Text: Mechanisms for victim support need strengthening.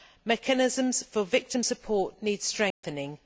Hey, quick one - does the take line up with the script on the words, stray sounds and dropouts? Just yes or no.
no